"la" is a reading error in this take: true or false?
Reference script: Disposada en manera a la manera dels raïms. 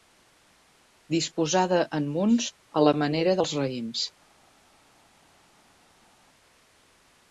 false